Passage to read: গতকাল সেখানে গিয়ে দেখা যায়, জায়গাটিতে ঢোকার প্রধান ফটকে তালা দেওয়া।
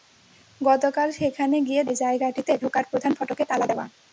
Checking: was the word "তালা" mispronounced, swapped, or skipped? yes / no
no